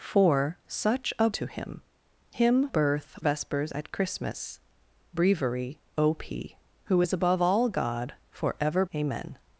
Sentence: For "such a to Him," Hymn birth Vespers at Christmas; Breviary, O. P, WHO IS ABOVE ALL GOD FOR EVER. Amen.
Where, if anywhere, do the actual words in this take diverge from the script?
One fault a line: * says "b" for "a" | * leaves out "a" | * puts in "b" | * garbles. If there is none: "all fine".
all fine